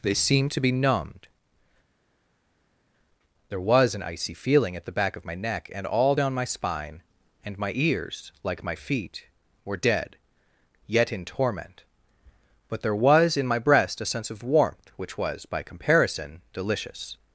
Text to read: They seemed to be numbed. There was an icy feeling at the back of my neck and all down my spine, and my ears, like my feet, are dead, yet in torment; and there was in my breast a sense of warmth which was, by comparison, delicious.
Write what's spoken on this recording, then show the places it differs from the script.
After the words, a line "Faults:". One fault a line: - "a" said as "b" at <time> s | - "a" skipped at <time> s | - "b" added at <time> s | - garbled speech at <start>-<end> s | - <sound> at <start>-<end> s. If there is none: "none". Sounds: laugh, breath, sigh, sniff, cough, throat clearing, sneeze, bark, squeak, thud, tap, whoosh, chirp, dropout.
They seemed to be numbed. There was an icy feeling at the back of my neck and all down my spine, and my ears, like my feet, were dead, yet in torment; but there was in my breast a sense of warmth which was, by comparison, delicious.
Faults:
- "are" said as "were" at 9.6 s
- "and" said as "but" at 12.7 s